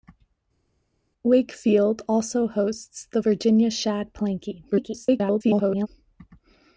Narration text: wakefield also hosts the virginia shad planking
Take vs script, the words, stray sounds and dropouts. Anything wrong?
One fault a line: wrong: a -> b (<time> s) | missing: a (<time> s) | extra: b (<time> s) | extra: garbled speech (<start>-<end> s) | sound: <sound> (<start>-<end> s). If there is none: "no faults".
extra: garbled speech (4.7-5.9 s)